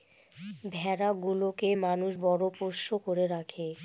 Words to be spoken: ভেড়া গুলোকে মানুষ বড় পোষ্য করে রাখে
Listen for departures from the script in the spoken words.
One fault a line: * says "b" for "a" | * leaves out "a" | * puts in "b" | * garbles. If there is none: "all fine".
all fine